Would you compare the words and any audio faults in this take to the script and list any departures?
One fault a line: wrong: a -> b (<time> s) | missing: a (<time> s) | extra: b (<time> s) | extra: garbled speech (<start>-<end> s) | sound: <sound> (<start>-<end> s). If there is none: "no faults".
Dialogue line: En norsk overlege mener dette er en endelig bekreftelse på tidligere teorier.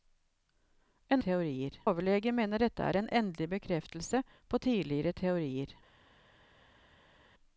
wrong: norsk -> teorier (1.3 s)